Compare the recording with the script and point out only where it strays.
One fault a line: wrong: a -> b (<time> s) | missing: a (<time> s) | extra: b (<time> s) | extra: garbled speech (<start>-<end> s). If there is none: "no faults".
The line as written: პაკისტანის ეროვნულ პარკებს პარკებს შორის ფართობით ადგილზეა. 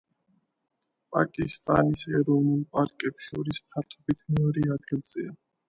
missing: პარკებს (3.3 s)
extra: მეორე (4.4 s)